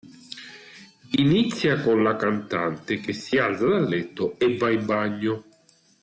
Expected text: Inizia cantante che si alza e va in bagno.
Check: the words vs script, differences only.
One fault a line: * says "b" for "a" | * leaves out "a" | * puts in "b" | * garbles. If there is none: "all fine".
* puts in "con la"
* puts in "dal letto"